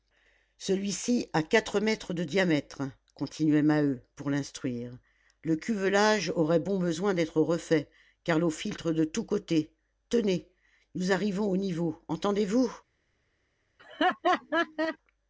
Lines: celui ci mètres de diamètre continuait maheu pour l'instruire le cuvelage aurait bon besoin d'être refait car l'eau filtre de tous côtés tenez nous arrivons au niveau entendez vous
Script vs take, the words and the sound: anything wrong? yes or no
yes